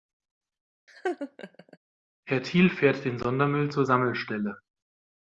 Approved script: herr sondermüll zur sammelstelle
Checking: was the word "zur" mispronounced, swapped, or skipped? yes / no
no